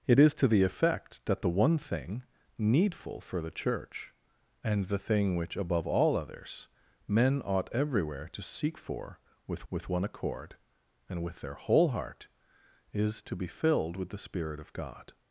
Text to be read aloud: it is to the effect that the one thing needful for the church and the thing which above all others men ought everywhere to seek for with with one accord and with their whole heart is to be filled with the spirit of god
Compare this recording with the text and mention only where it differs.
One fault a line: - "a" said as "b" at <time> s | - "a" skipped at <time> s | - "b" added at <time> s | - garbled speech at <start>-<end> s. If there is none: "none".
none